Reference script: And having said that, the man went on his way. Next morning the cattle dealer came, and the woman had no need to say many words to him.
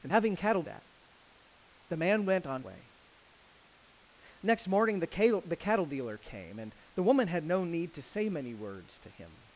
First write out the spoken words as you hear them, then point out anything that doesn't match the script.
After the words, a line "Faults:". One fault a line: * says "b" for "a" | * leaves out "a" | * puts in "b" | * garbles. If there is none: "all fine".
And having cattle that, the man went on way. Next morning the cattle dealer came, and the woman had no need to say many words to him.
Faults:
* says "cattle" for "said"
* leaves out "his"